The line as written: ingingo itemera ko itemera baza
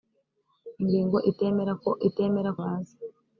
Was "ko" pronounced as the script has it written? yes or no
yes